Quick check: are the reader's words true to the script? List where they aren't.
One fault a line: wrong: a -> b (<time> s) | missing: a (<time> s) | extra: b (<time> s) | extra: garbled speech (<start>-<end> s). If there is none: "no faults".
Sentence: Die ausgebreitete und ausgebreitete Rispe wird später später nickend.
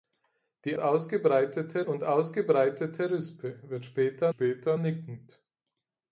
no faults